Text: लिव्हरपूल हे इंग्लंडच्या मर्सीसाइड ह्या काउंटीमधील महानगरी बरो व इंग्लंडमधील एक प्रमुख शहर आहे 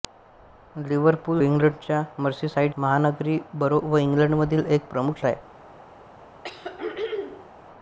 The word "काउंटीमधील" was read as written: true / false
false